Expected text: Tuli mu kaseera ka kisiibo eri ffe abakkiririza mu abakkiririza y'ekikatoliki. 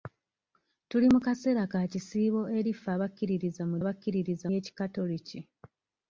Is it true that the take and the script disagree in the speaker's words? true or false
false